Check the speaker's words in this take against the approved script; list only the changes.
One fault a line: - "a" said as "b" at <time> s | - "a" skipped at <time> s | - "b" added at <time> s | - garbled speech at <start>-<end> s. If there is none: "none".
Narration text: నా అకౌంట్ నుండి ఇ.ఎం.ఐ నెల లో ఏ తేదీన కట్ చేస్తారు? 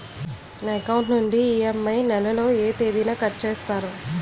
none